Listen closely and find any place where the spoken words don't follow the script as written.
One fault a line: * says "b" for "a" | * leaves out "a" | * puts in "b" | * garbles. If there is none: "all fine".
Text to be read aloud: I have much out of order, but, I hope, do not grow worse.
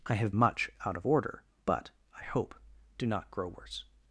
all fine